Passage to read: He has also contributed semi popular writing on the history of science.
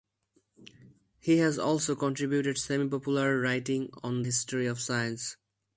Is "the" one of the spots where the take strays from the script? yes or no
yes